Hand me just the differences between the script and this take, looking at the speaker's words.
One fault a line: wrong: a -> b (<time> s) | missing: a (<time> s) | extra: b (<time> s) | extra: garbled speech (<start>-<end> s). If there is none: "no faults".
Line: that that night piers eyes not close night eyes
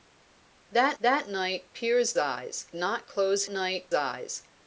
no faults